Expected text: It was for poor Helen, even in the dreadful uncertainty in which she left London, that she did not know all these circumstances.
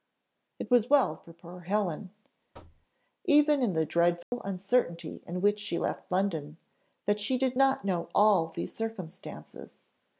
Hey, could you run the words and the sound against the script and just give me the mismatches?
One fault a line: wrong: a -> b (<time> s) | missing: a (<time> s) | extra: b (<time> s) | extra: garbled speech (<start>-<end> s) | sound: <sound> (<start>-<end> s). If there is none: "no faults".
extra: well (0.9 s)
sound: thud (2.5-2.9 s)
sound: dropout (4.2-4.3 s)